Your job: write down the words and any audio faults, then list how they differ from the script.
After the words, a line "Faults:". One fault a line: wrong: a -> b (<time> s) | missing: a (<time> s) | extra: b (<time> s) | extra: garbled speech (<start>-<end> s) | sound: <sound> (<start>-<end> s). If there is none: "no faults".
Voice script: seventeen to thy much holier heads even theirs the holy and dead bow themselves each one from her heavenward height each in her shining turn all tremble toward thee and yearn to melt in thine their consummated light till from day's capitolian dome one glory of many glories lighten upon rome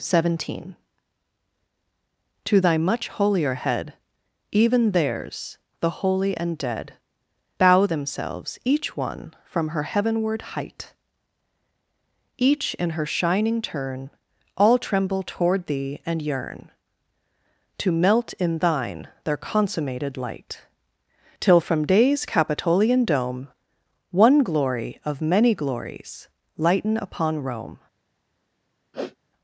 seventeen to thy much holier head even theirs the holy and dead bow themselves each one from her heavenward height each in her shining turn all tremble toward thee and yearn to melt in thine their consummated light till from day's capitolian dome one glory of many glories lighten upon rome
Faults:
wrong: heads -> head (3.5 s)
sound: sniff (28.9-29.2 s)